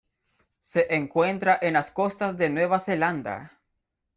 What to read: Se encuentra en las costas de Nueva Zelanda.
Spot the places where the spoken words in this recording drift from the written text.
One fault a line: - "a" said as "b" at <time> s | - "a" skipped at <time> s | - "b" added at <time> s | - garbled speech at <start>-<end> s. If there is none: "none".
none